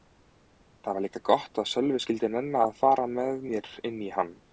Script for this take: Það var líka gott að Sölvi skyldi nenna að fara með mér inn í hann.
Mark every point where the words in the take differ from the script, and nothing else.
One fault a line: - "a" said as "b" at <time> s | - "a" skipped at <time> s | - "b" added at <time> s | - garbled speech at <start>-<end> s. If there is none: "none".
none